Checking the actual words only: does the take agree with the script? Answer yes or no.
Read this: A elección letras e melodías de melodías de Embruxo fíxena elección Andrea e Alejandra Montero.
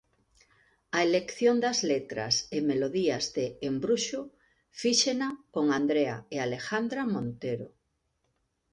no